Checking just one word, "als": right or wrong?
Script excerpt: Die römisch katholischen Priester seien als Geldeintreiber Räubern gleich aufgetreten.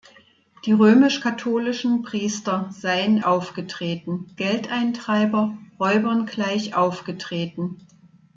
wrong